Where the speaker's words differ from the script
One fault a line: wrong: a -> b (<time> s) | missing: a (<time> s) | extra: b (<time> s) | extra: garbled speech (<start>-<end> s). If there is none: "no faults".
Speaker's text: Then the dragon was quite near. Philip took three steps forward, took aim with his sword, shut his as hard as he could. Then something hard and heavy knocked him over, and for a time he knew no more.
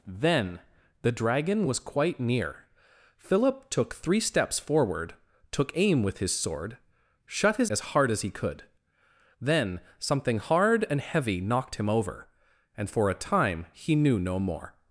no faults